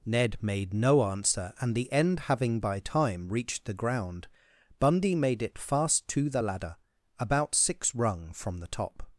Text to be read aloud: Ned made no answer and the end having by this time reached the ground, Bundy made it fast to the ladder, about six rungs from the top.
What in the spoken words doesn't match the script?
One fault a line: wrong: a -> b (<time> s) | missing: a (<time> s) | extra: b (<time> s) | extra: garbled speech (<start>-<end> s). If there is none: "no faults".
missing: this (2.8 s)
wrong: rungs -> rung (7.9 s)